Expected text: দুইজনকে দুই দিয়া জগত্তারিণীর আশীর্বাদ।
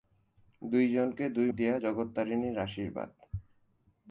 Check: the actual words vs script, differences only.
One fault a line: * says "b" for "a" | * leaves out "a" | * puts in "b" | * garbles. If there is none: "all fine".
all fine